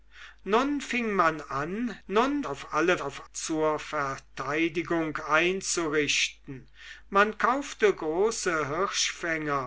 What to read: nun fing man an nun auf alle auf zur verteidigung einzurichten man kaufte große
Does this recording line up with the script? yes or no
yes